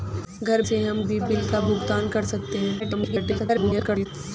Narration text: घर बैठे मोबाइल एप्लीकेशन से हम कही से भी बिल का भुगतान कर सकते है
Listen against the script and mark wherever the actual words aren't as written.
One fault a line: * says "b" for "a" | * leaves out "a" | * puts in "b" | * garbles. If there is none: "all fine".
* leaves out "बैठे मोबाइल एप्लीकेशन"
* leaves out "कही से"
* garbles